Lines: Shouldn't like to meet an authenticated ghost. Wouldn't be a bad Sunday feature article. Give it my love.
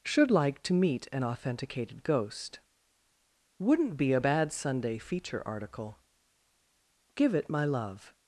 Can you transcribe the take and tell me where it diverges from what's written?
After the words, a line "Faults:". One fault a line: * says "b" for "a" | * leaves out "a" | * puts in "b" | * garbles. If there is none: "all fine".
Should like to meet an authenticated ghost. Wouldn't be a bad Sunday feature article. Give it my love.
Faults:
* says "Should" for "Shouldn't"